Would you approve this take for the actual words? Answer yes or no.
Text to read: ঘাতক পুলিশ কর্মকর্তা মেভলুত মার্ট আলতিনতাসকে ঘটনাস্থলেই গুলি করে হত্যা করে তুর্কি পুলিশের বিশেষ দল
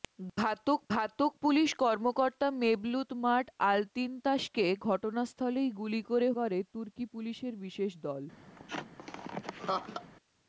no